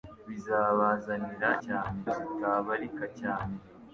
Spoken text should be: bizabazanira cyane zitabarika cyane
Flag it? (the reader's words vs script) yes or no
no